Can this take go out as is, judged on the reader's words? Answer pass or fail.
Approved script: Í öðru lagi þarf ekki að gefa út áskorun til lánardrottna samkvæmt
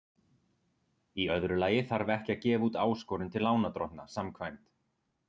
pass